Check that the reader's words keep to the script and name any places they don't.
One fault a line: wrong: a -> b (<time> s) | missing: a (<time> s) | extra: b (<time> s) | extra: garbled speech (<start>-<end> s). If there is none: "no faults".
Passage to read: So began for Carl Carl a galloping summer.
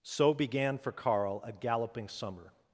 missing: Carl (1.4 s)